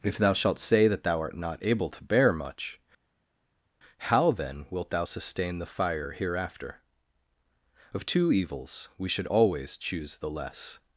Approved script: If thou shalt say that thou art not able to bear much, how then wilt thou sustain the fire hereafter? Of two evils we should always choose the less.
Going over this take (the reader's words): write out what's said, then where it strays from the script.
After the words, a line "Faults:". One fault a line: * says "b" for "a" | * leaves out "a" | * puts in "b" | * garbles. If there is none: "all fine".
If thou shalt say that thou art not able to bear much, how then wilt thou sustain the fire hereafter? Of two evils we should always choose the less.
Faults:
all fine